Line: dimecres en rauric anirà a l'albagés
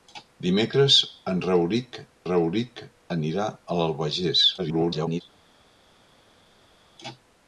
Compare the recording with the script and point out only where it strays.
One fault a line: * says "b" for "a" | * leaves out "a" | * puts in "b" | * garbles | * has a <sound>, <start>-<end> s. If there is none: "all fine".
* puts in "rauric"
* garbles